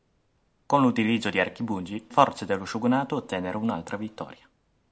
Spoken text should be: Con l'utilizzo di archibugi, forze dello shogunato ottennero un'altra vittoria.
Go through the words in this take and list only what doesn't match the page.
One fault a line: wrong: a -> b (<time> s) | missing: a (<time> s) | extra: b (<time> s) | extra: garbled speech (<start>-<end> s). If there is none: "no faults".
no faults